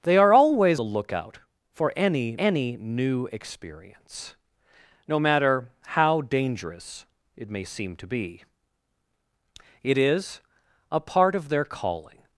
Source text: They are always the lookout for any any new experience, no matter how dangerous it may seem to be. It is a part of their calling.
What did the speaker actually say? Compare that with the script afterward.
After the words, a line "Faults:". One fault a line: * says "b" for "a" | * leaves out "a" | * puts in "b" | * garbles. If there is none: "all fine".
They are always the lookout for any any new experience, no matter how dangerous it may seem to be. It is a part of their calling.
Faults:
all fine